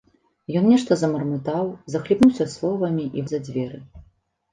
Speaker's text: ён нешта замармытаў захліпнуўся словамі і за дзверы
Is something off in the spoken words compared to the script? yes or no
no